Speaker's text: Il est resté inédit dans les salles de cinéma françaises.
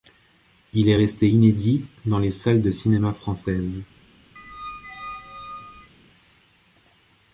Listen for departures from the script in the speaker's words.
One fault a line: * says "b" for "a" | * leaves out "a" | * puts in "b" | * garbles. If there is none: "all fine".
all fine